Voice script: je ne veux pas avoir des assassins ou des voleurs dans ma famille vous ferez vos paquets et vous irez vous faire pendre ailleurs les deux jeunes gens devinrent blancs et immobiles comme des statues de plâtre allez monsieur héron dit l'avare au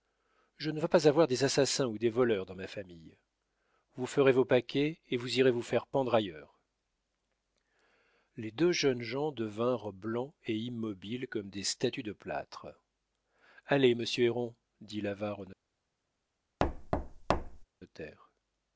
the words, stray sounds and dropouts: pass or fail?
fail